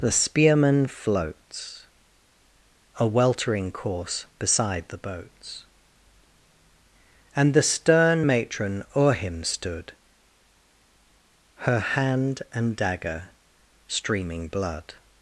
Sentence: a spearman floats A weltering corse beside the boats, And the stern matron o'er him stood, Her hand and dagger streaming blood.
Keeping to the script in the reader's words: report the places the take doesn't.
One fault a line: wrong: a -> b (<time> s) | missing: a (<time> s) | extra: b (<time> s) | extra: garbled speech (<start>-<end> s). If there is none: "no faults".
wrong: a -> the (0.0 s)